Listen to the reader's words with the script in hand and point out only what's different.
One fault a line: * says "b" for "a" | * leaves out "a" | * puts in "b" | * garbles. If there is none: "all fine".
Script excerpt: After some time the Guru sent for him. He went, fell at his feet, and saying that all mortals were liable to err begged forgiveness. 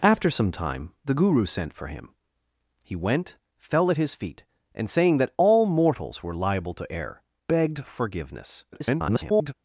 * garbles